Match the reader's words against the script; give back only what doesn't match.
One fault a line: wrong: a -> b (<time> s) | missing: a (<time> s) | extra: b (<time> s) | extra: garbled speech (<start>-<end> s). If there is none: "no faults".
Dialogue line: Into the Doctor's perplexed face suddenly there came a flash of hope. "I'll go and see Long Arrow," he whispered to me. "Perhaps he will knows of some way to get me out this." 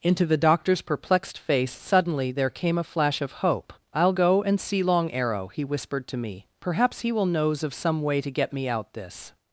no faults